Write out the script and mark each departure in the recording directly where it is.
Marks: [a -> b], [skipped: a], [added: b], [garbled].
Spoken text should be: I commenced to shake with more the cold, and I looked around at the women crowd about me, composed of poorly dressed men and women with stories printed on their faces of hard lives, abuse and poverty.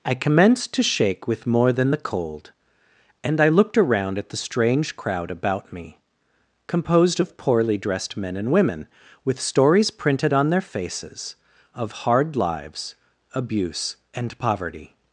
I commenced to shake with more [added: than] the cold, and I looked around at the [women -> strange] crowd about me, composed of poorly dressed men and women with stories printed on their faces of hard lives, abuse and poverty.